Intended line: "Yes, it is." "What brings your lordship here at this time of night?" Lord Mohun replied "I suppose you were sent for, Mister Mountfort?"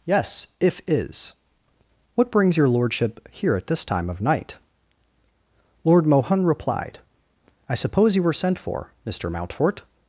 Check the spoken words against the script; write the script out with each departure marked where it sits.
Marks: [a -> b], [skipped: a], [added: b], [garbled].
"Yes, [it -> if] is." "What brings your lordship here at this time of night?" Lord Mohun replied "I suppose you were sent for, Mister Mountfort?"